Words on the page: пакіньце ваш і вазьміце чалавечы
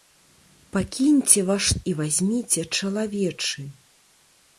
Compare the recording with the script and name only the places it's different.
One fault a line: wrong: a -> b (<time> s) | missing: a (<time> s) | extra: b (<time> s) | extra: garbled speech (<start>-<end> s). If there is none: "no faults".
no faults